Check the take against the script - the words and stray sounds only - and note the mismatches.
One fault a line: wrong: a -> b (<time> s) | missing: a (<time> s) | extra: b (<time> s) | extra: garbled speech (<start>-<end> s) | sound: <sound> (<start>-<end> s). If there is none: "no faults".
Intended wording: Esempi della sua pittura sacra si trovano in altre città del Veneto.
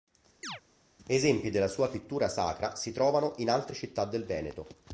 sound: chirp (0.4-0.6 s)